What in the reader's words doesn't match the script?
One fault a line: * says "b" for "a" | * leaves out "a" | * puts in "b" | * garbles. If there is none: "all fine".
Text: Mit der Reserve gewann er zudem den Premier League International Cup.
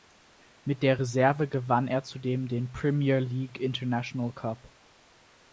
all fine